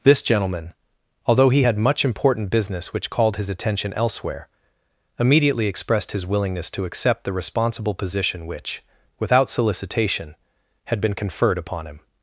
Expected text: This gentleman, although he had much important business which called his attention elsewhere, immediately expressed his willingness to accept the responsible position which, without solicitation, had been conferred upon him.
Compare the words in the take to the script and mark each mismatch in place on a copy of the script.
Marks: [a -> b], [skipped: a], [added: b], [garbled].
This gentleman, although he had much important business which called his attention elsewhere, immediately expressed his willingness to accept the responsible position which, without solicitation, had been conferred upon him.